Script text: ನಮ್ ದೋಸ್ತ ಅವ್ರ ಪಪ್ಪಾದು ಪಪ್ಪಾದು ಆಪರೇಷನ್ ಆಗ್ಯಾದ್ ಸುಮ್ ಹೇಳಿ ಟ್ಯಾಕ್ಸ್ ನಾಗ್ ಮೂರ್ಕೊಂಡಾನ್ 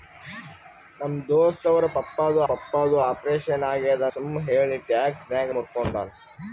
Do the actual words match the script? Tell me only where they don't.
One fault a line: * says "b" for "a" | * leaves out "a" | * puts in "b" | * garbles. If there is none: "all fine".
all fine